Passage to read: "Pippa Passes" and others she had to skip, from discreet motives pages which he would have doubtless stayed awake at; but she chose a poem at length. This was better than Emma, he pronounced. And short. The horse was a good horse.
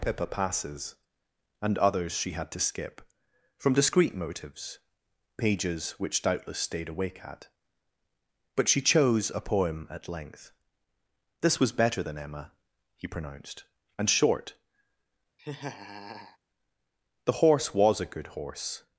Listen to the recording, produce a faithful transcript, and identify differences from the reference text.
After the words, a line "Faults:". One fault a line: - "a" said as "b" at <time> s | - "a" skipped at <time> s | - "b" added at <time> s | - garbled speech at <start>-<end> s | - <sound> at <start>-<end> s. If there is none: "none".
"Pippa Passes" and others she had to skip, from discreet motives pages which doubtless stayed awake at; but she chose a poem at length. This was better than Emma, he pronounced. And short. The horse was a good horse.
Faults:
- "he would have" skipped at 6.2 s
- laugh at 15.4-16.4 s